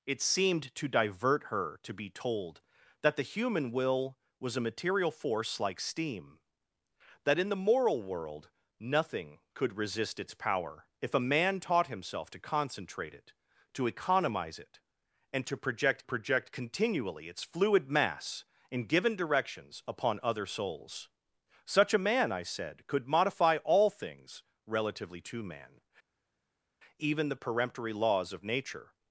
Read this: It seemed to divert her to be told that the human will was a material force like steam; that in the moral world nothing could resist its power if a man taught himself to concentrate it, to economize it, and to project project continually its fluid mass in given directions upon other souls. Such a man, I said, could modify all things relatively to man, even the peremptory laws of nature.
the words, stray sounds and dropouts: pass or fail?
pass